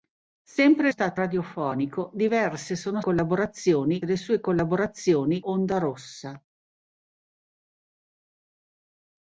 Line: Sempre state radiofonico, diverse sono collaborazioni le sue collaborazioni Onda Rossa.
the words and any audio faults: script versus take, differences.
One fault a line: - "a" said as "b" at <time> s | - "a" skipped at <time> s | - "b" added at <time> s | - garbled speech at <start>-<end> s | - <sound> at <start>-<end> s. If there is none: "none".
none